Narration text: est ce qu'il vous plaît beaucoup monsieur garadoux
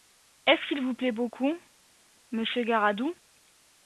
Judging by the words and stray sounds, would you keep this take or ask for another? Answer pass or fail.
pass